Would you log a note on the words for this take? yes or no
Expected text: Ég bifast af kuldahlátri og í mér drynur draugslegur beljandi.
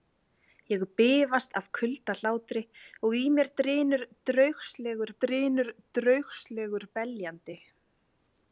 yes